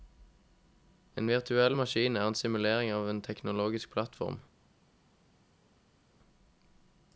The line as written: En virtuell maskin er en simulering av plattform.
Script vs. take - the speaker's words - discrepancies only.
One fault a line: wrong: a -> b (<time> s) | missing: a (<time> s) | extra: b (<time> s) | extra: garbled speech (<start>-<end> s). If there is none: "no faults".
extra: en teknologisk (3.1 s)